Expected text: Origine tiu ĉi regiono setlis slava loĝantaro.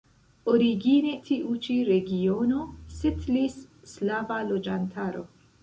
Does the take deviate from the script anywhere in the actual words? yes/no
no